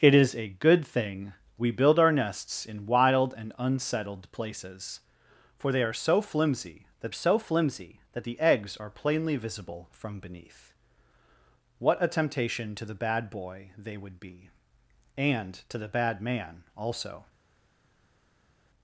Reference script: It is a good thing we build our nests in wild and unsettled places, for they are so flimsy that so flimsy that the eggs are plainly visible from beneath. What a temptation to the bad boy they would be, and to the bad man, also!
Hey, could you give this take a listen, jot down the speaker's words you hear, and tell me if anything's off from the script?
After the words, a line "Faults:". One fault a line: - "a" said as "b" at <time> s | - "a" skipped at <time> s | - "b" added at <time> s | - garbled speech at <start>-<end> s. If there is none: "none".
It is a good thing we build our nests in wild and unsettled places, for they are so flimsy that so flimsy that the eggs are plainly visible from beneath. What a temptation to the bad boy they would be, and to the bad man, also!
Faults:
none